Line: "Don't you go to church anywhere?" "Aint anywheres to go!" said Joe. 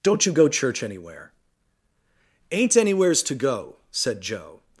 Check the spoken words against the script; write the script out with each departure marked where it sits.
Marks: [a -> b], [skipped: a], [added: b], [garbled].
"Don't you go [skipped: to] church anywhere?" "Aint anywheres to go!" said Joe.